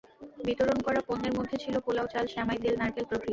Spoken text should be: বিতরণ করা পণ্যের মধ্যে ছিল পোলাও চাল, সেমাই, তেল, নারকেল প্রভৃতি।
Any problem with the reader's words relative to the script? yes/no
no